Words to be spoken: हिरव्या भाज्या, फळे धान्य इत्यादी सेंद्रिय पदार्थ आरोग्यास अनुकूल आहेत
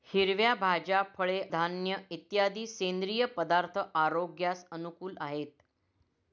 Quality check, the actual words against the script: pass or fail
pass